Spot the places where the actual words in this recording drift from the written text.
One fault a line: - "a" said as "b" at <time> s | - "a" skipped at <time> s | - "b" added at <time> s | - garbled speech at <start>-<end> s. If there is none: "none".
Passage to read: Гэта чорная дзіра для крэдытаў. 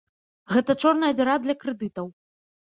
none